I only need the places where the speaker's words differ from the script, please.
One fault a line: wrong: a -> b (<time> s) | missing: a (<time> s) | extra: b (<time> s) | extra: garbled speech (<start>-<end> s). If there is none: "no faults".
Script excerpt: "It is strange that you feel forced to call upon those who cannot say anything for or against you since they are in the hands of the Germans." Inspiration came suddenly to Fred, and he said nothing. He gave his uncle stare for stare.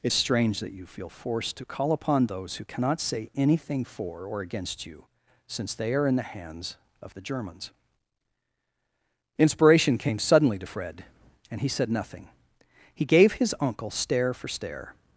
missing: is (0.1 s)